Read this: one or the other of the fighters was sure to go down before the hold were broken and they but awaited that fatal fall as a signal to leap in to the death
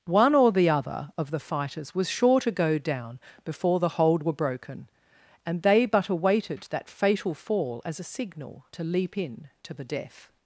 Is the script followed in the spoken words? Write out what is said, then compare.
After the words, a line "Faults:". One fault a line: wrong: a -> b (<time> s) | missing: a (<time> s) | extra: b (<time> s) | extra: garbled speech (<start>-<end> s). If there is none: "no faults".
one or the other of the fighters was sure to go down before the hold were broken and they but awaited that fatal fall as a signal to leap in to the death
Faults:
no faults